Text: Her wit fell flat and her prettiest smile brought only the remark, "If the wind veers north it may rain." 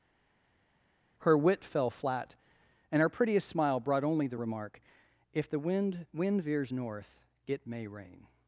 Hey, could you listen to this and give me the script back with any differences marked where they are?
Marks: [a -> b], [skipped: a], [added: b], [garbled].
Her wit fell flat and her prettiest smile brought only the remark, "If the wind [added: wind] veers north it may rain."